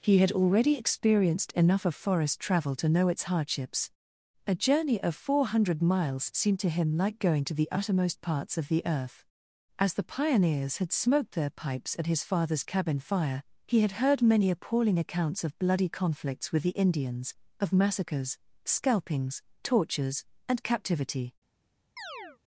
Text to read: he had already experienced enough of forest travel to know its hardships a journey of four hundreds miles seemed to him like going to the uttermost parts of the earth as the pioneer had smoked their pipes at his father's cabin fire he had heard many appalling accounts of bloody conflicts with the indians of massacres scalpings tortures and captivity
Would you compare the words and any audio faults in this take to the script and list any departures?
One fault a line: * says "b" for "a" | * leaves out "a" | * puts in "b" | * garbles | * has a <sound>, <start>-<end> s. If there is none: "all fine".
* says "hundred" for "hundreds"
* says "pioneers" for "pioneer"
* has a chirp, 22.0-22.4 s